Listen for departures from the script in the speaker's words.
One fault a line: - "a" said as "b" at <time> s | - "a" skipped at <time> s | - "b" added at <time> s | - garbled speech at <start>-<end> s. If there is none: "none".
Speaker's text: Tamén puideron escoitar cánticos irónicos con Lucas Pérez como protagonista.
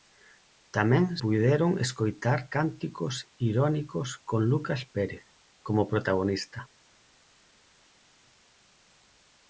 none